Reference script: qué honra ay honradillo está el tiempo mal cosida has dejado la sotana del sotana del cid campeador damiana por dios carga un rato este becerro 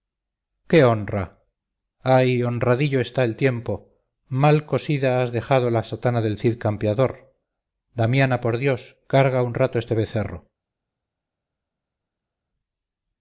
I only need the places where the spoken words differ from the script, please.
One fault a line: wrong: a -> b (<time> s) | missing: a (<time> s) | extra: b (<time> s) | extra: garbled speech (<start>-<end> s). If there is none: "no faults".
missing: sotana del (6.4 s)